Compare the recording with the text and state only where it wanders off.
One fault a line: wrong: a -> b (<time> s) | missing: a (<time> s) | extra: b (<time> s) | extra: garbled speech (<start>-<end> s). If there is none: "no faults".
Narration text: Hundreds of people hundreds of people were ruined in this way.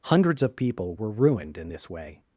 missing: hundreds of people (0.9 s)